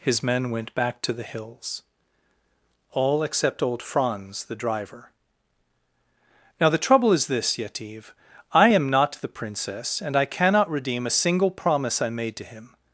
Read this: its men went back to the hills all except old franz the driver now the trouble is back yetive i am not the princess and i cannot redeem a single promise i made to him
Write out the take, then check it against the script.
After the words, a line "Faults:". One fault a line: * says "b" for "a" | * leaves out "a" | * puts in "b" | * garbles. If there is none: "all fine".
his men went back to the hills all except old franz the driver now the trouble is this yetive i am not the princess and i cannot redeem a single promise i made to him
Faults:
* says "his" for "its"
* says "this" for "back"